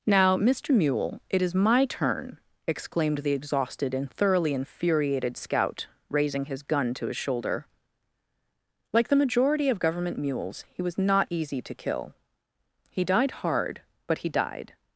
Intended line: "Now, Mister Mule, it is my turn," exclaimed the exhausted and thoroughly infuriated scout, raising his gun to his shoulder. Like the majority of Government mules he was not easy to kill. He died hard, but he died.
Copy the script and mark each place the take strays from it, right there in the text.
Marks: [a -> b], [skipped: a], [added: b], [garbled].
"Now, Mister Mule, it is my turn," exclaimed the exhausted and thoroughly infuriated scout, raising his gun to his shoulder. Like the majority of Government mules he was not easy to kill. He died hard, but he died.